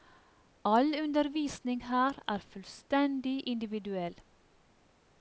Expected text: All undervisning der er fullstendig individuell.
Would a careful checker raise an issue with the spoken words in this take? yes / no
yes